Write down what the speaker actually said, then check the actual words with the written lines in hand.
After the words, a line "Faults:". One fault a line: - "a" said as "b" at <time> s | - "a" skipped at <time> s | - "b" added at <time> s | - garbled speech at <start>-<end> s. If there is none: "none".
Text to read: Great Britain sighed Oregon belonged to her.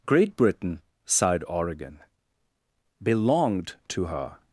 Great Britain sighed Oregon belonged to her.
Faults:
none